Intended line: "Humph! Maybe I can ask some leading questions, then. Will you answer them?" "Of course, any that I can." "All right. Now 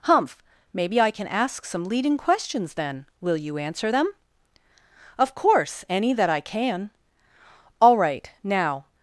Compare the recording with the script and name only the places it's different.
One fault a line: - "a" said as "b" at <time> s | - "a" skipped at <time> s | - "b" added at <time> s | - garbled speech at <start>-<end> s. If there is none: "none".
none